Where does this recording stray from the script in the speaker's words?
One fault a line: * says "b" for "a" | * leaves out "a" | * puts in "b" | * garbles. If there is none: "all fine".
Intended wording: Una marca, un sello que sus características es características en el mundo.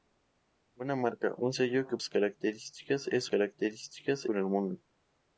all fine